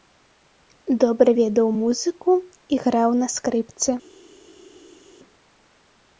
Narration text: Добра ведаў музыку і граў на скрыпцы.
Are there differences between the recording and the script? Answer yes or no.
no